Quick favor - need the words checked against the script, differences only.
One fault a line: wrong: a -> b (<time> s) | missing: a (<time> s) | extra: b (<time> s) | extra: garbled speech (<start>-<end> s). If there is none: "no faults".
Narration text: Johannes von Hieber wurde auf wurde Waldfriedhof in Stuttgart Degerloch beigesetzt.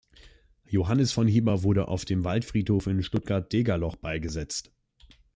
wrong: wurde -> dem (2.0 s)